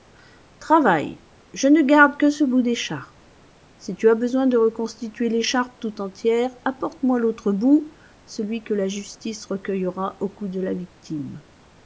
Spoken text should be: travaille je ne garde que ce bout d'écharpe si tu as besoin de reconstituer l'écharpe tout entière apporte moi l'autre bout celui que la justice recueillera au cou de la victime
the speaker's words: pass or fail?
pass